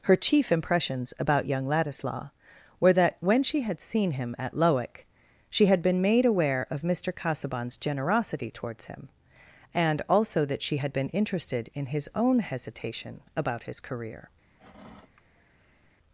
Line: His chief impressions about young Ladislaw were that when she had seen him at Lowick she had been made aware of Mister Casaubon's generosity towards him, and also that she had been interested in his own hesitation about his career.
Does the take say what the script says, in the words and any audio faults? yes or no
no